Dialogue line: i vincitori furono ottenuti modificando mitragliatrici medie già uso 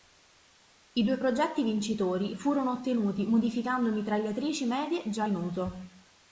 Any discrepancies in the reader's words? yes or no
yes